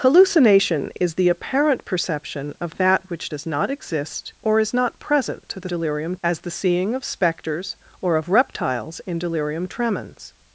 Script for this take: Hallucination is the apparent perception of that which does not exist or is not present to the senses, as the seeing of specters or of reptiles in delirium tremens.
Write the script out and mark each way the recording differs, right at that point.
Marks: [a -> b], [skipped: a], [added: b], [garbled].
Hallucination is the apparent perception of that which does not exist or is not present to the [senses, -> delirium] as the seeing of specters or of reptiles in delirium tremens.